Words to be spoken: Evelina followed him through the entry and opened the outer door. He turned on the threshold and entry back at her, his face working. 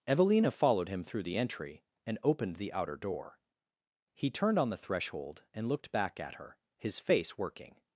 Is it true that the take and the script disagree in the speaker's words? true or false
true